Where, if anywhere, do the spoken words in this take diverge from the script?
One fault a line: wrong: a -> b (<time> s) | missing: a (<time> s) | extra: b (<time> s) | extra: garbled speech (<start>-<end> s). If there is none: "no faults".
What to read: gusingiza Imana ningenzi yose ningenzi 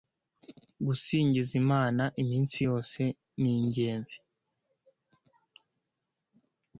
wrong: ningenzi -> iminsi (2.2 s)